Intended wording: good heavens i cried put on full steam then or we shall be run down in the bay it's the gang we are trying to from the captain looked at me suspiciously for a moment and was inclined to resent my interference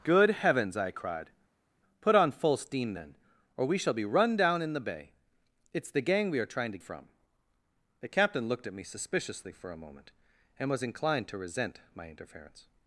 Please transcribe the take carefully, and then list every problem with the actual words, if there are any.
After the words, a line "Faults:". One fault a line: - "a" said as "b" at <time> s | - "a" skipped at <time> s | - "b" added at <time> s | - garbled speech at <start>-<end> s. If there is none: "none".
good heavens i cried put on full steam then or we shall be run down in the bay it's the gang we are trying to from the captain looked at me suspiciously for a moment and was inclined to resent my interference
Faults:
none